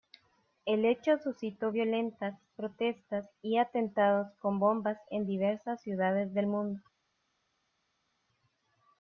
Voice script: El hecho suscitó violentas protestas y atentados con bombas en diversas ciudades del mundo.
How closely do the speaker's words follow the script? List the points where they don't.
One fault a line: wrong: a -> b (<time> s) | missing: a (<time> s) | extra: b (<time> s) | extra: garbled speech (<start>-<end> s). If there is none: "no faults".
no faults